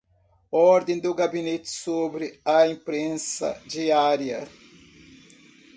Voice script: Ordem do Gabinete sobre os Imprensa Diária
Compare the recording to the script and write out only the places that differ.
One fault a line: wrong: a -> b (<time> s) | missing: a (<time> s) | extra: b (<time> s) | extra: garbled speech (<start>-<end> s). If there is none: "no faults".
wrong: os -> a (2.5 s)